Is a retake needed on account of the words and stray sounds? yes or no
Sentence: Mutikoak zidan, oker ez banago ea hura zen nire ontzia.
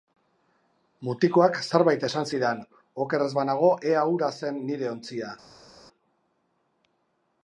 yes